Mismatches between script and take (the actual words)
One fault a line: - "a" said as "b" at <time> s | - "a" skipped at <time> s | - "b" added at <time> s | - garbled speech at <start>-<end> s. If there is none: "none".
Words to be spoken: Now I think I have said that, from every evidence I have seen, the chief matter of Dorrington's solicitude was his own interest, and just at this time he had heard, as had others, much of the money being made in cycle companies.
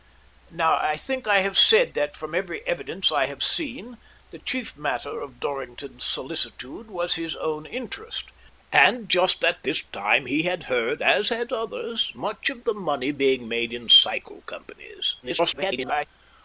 - garbled speech at 15.2-16.1 s